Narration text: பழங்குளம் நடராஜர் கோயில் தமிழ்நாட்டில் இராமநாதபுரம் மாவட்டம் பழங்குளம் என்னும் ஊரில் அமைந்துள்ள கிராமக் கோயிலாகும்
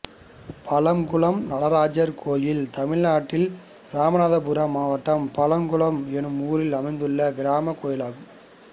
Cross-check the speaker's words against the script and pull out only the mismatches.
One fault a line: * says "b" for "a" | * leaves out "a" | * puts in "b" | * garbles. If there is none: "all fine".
all fine